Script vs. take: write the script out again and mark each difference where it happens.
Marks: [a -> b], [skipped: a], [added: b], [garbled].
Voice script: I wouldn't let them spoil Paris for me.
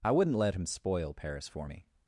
I wouldn't let [them -> him] spoil Paris for me.